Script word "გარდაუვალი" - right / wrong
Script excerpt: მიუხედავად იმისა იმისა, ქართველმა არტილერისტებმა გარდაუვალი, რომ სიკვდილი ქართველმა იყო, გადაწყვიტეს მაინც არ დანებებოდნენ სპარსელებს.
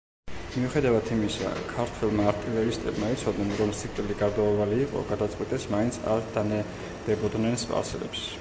wrong